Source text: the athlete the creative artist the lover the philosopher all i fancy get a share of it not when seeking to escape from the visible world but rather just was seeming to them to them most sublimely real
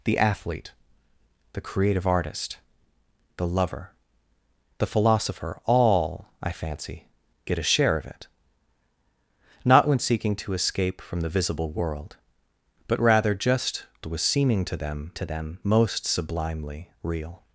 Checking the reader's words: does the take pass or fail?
pass